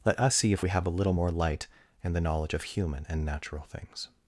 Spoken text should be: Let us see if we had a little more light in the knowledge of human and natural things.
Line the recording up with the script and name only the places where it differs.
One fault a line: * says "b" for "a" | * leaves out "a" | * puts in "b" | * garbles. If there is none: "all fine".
* says "have" for "had"